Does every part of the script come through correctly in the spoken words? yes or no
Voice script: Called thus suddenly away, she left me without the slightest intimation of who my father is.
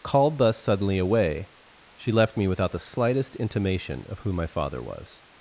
no